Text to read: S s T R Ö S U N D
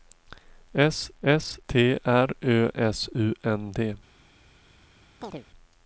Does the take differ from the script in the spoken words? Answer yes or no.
no